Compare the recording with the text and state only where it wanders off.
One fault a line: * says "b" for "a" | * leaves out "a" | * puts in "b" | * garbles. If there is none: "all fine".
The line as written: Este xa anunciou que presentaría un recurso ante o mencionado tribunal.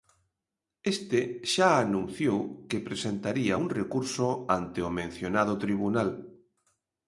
all fine